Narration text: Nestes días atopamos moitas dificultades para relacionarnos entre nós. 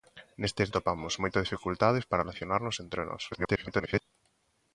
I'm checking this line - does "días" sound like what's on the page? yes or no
no